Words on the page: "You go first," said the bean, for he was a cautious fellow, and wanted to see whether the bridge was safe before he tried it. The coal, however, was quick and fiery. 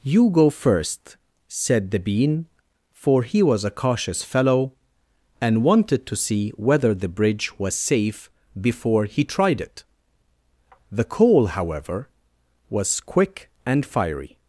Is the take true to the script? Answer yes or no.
yes